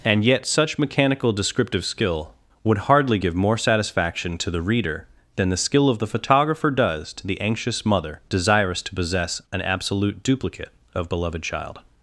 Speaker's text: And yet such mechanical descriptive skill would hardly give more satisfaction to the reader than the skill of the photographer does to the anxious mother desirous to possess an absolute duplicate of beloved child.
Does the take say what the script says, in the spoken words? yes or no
yes